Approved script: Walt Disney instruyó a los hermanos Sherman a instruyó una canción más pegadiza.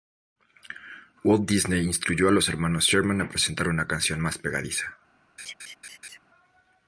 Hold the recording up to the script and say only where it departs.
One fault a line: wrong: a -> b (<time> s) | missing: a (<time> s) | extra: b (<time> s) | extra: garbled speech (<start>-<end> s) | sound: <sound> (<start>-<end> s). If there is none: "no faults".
wrong: instruyó -> presentar (3.3 s)
sound: laugh (5.4-6.2 s)